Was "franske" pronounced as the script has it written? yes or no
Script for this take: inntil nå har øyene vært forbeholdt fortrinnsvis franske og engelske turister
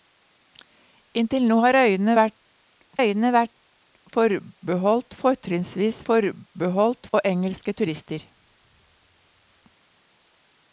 no